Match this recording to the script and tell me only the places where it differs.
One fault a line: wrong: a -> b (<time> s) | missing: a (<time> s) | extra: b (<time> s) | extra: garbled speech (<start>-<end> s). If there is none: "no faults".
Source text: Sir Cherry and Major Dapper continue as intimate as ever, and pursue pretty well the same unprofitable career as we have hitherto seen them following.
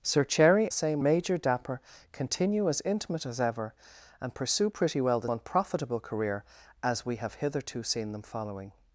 wrong: and -> same (0.7 s)
missing: same (5.3 s)